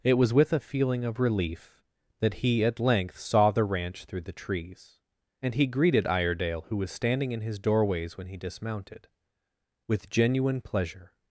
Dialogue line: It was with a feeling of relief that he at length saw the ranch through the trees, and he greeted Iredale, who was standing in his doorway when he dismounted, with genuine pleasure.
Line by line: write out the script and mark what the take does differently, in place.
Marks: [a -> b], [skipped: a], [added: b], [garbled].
It was with a feeling of relief that he at length saw the ranch through the trees, and he greeted Iredale, who was standing in his [doorway -> doorways] when he dismounted, with genuine pleasure.